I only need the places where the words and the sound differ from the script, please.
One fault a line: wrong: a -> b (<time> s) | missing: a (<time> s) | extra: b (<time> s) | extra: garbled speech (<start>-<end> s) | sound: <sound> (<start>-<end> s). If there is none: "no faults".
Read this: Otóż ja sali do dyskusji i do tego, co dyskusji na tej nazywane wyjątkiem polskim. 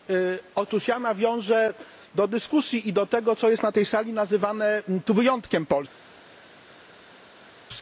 wrong: sali -> nawiążę (1.0 s)
wrong: dyskusji -> jest (3.5 s)
extra: sali (3.9 s)